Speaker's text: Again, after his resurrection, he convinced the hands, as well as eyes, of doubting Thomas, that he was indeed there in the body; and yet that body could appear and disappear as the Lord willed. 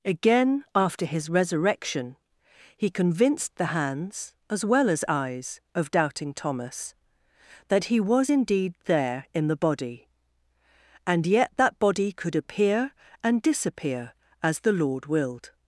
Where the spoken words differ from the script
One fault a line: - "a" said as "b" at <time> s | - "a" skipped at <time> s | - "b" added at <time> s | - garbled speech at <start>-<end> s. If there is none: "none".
none